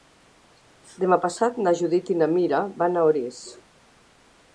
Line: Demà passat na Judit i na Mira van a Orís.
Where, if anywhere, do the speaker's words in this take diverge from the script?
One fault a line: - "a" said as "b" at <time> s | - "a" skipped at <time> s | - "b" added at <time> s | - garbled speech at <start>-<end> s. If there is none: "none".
none